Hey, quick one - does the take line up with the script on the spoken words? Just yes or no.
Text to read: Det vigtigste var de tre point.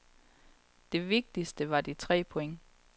yes